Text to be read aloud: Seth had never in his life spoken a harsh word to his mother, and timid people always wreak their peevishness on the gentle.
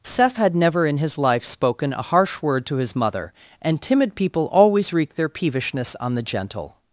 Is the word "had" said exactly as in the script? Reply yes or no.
yes